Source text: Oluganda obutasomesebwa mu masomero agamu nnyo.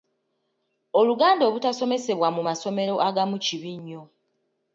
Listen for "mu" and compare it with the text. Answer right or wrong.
right